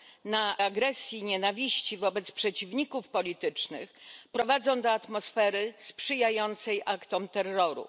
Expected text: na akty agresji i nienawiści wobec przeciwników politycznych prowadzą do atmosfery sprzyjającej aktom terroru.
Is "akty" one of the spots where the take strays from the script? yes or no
yes